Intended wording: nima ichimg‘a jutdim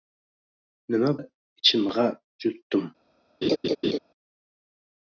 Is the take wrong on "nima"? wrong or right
right